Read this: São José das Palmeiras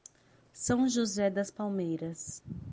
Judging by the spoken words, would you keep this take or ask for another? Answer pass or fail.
pass